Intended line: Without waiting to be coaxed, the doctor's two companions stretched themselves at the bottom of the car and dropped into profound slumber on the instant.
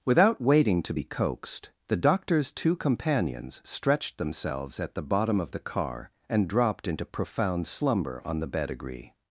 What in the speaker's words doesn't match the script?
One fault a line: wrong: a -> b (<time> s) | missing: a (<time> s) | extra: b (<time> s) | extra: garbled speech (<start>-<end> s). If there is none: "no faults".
wrong: instant -> bedigree (8.5 s)